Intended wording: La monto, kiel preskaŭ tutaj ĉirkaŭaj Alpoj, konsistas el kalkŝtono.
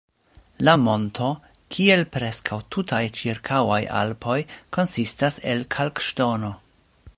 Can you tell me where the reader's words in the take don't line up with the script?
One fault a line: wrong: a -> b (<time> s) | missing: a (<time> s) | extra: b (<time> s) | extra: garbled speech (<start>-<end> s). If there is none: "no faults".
no faults